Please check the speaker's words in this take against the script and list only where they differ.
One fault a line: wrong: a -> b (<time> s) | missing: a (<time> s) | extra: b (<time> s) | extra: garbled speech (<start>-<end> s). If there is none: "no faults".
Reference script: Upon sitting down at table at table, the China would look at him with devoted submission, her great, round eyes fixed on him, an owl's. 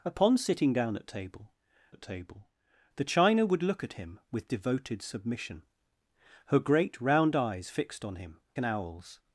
no faults